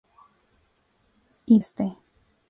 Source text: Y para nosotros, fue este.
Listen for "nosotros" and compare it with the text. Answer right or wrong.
wrong